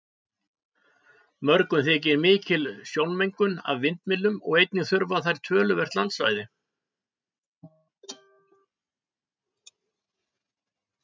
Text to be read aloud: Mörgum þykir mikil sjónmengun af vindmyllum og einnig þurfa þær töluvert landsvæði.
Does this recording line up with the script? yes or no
yes